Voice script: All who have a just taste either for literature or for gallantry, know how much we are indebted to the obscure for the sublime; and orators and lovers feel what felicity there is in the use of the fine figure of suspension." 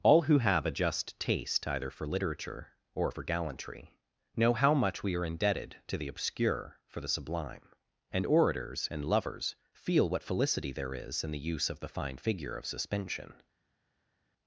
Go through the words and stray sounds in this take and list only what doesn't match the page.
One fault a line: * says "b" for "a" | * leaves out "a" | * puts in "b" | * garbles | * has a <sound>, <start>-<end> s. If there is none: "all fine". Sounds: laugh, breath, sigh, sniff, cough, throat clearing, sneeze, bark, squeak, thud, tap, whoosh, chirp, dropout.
all fine